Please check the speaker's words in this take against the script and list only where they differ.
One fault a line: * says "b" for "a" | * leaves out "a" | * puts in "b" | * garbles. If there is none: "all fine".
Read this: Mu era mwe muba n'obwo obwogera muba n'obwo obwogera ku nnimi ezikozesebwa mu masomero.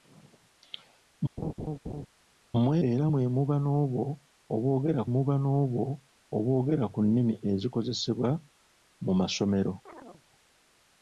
all fine